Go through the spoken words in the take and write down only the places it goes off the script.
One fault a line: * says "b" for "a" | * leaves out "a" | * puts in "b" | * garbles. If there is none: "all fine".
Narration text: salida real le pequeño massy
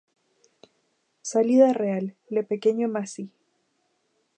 all fine